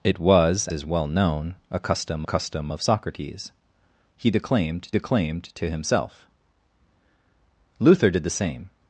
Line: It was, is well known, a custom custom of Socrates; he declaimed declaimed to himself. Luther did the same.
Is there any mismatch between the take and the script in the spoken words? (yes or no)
no